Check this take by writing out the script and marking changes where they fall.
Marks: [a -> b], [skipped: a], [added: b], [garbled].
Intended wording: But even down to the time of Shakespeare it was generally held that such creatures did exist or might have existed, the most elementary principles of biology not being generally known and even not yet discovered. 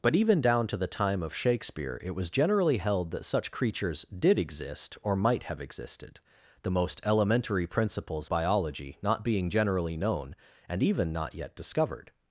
But even down to the time of Shakespeare it was generally held that such creatures did exist or might have existed, the most elementary principles [skipped: of] biology not being generally known and even not yet discovered.